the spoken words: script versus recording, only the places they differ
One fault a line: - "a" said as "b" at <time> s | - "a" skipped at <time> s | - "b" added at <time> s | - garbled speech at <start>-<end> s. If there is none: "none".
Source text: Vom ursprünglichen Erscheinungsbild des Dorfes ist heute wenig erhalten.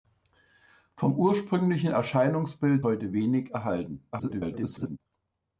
- "des Dorfes ist" skipped at 2.9 s
- garbled speech at 4.1-5.0 s